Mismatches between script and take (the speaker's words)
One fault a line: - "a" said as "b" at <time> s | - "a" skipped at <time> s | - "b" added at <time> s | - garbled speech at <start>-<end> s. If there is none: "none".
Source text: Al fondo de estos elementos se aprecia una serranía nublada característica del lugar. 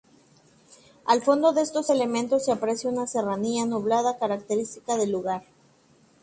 none